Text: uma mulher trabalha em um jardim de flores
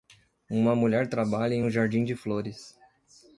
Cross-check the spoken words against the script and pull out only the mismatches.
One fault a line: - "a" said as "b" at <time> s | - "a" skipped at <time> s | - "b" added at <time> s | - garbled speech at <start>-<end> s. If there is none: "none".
none